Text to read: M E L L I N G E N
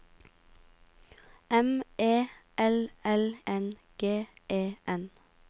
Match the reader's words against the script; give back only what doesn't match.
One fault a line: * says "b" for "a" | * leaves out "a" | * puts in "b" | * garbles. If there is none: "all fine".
* leaves out "I"